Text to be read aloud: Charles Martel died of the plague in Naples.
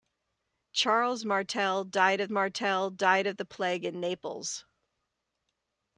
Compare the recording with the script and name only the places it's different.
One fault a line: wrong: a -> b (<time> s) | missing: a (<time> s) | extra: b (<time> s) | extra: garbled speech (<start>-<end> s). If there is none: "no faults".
extra: Martel died of (2.3 s)